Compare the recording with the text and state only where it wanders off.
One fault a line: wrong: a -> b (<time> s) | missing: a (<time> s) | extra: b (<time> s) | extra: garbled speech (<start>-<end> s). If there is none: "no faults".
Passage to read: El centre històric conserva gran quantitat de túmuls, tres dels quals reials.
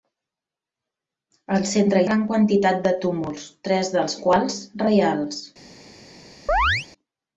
missing: històric conserva (2.0 s)